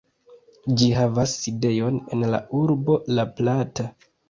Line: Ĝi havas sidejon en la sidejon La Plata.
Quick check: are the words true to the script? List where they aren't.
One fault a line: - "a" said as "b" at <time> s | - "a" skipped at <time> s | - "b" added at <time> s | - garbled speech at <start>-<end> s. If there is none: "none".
- "sidejon" said as "urbo" at 2.6 s